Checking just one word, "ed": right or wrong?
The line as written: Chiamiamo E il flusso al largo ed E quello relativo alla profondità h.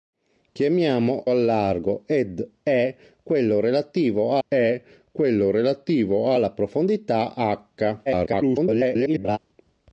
wrong